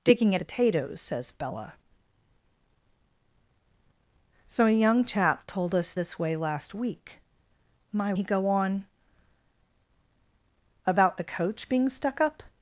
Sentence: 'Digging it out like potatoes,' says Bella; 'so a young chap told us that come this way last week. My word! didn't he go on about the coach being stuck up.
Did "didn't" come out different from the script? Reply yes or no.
yes